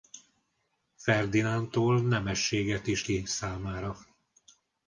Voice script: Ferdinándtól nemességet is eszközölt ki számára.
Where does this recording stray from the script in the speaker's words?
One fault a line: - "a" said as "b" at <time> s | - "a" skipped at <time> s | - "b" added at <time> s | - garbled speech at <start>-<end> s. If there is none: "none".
- "eszközölt" skipped at 3.0 s